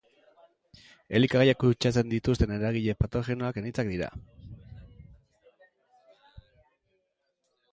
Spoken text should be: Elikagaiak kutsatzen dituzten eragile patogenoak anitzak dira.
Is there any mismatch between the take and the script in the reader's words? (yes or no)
no